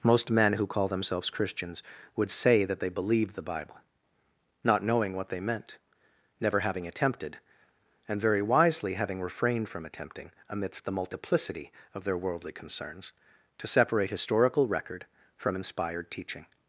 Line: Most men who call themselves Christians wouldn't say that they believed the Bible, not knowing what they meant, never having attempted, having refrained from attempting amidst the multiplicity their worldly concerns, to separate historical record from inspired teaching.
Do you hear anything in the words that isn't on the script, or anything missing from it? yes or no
yes